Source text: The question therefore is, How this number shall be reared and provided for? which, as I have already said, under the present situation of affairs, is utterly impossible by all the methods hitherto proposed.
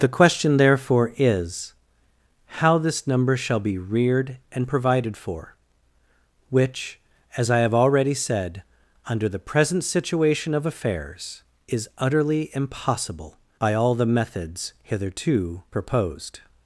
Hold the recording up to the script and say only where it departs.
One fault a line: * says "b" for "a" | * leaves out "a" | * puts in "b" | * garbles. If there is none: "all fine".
all fine